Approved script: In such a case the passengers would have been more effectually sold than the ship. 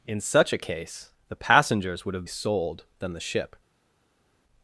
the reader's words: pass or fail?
fail